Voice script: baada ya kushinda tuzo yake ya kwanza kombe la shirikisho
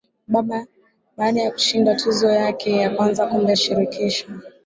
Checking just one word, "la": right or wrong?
wrong